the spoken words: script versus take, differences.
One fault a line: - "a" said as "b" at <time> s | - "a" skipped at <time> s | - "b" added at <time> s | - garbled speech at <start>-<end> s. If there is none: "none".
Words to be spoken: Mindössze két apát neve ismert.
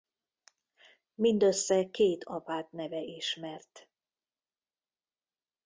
none